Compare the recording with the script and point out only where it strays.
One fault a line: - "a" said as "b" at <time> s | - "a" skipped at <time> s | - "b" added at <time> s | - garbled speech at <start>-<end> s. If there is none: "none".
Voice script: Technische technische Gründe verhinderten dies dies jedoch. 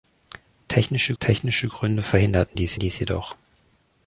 none